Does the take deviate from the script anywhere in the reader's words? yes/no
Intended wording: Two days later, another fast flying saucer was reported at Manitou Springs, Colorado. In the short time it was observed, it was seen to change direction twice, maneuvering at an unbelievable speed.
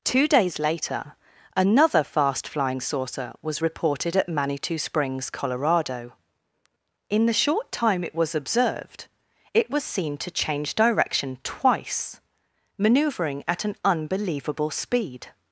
no